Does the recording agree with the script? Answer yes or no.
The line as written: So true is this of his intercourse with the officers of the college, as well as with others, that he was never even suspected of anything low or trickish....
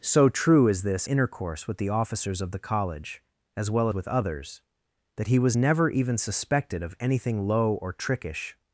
no